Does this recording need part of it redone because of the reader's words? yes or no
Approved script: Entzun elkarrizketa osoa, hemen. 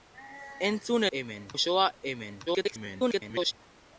yes